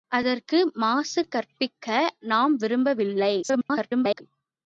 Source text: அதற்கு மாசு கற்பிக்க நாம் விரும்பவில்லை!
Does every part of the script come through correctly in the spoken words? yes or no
no